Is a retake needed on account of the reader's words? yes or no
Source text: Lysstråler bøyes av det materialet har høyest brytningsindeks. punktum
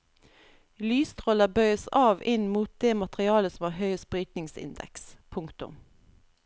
yes